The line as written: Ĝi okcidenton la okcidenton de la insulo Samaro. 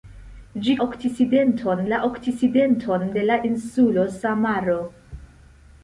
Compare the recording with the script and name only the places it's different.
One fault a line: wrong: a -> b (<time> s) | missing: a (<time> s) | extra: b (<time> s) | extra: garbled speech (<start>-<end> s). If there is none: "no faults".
no faults